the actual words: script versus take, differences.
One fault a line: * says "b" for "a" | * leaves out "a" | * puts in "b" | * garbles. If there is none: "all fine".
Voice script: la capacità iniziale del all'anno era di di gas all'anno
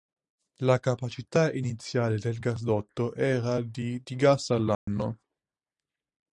* says "gasdotto" for "all'anno"